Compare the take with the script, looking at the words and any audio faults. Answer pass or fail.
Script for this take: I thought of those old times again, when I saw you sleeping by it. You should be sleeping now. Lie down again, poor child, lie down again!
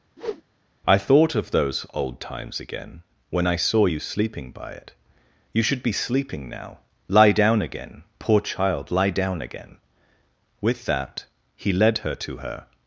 fail